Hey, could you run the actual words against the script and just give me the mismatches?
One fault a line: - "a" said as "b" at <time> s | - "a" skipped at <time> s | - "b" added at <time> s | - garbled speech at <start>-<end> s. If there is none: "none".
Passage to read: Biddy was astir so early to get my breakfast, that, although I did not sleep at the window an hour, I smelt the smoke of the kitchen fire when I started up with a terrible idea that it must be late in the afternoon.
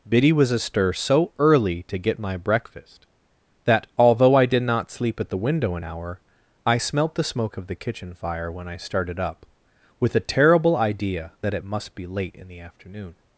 none